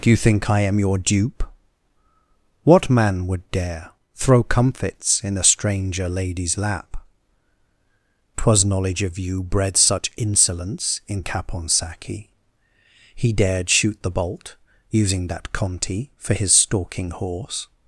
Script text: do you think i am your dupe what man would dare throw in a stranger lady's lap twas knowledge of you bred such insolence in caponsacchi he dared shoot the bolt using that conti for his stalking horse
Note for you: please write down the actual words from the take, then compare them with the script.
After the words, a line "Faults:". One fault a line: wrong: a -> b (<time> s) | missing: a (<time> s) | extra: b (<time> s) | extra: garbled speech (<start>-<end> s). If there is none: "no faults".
do you think i am your dupe what man would dare throw comfits in a stranger lady's lap twas knowledge of you bred such insolence in caponsacchi he dared shoot the bolt using that conti for his stalking horse
Faults:
extra: comfits (4.4 s)